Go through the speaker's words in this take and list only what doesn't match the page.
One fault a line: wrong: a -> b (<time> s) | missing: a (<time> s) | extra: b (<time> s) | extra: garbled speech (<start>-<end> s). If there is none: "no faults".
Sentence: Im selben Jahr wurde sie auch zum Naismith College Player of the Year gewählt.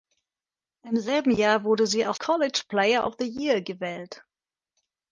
missing: zum Naismith (2.2 s)